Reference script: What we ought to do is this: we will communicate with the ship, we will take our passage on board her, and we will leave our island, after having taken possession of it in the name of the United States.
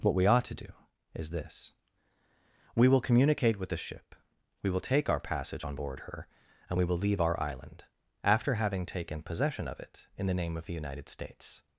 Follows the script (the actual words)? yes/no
yes